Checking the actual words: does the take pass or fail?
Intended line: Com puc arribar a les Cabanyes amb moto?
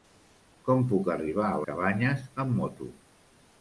fail